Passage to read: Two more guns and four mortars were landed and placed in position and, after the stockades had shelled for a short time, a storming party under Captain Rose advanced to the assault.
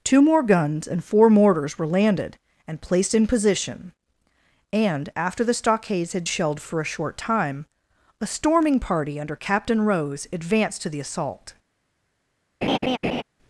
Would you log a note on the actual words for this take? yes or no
no